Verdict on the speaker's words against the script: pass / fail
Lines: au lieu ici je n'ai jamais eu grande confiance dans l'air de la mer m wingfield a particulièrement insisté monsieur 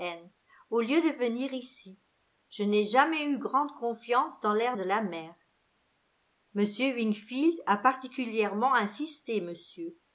fail